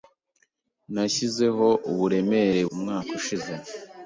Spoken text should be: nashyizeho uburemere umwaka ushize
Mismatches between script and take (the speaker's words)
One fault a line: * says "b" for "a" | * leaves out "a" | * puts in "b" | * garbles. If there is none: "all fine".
all fine